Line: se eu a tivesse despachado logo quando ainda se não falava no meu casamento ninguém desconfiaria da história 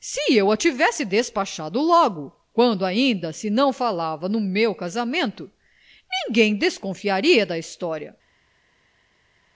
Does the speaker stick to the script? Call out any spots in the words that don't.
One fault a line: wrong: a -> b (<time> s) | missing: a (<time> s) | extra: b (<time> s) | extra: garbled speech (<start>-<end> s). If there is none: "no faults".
no faults